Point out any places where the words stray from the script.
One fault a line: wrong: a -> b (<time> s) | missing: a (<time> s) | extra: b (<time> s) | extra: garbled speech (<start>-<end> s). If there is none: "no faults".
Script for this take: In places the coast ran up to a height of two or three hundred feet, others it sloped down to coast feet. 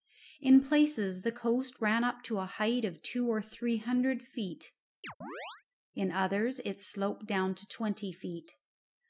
extra: in (5.9 s)
wrong: coast -> twenty (7.7 s)